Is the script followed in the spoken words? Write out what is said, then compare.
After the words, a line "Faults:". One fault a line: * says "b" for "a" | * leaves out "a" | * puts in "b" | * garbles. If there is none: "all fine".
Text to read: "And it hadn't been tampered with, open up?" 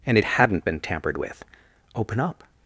"And it hadn't been tampered with, open up?"
Faults:
all fine